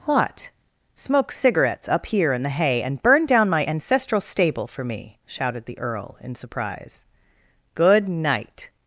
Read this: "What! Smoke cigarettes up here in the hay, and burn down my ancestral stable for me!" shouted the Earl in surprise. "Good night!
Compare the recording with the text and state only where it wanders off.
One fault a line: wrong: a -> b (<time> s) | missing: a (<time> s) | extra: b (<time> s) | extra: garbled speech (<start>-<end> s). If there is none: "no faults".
no faults